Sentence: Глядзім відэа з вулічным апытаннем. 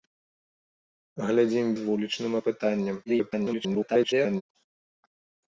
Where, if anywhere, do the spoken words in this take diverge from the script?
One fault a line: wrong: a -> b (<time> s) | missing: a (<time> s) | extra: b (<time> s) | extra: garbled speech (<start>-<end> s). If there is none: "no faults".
missing: відэа (1.7 s)
extra: garbled speech (3.1-4.4 s)